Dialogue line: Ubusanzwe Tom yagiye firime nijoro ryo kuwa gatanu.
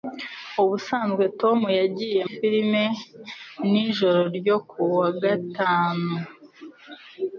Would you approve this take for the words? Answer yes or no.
yes